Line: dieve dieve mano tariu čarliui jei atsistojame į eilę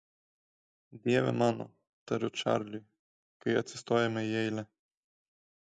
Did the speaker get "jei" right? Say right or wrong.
wrong